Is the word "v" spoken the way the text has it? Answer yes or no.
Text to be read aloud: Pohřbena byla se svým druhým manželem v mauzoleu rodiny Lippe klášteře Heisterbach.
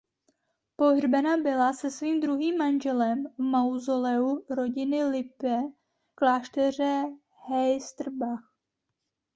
yes